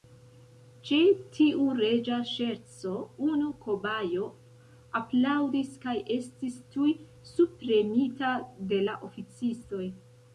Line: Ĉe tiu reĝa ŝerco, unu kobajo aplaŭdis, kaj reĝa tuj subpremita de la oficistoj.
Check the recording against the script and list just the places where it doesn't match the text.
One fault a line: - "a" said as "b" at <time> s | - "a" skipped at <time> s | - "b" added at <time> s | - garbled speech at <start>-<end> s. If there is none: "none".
- "reĝa" said as "estis" at 6.2 s